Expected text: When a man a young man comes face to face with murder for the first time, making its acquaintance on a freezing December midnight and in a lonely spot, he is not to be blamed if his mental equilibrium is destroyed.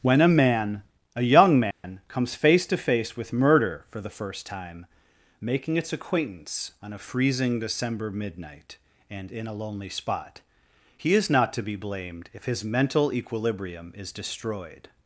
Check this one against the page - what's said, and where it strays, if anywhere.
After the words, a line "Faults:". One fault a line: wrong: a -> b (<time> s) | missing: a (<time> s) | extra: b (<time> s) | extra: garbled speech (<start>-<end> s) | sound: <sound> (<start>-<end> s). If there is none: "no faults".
When a man a young man comes face to face with murder for the first time, making its acquaintance on a freezing December midnight and in a lonely spot, he is not to be blamed if his mental equilibrium is destroyed.
Faults:
sound: dropout (1.7-1.8 s)